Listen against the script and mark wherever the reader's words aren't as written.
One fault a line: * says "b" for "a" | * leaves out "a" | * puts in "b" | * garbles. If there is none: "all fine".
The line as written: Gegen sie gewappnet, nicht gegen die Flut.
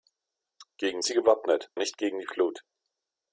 all fine